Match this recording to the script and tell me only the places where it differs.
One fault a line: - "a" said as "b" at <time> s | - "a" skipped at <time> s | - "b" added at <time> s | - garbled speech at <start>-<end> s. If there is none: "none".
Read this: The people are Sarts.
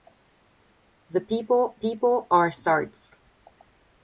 - "people" added at 1.7 s